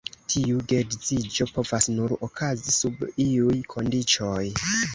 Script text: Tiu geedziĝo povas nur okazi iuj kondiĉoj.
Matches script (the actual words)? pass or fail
fail